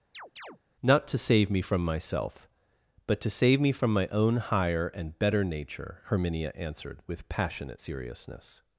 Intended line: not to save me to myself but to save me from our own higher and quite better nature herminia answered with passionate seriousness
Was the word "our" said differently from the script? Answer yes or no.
yes